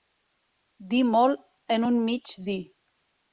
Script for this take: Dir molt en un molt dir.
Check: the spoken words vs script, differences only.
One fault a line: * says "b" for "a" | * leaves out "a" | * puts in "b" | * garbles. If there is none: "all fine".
* says "mig" for "molt"